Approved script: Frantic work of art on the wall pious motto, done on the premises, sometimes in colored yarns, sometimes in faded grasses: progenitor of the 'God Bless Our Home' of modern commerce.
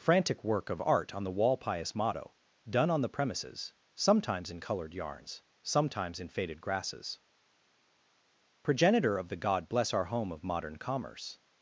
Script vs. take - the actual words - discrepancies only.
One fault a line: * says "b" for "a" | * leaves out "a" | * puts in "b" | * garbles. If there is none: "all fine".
all fine